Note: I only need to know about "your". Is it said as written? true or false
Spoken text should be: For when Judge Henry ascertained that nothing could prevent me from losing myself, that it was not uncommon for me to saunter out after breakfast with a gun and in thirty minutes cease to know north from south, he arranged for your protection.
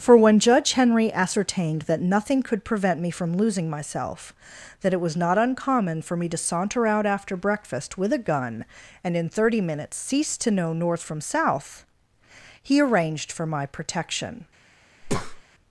false